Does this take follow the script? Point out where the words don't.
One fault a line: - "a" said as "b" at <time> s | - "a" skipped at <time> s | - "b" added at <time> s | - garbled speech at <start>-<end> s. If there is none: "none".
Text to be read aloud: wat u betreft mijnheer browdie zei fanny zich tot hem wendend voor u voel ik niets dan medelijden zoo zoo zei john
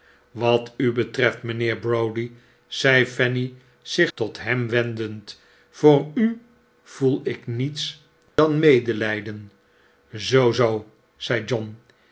none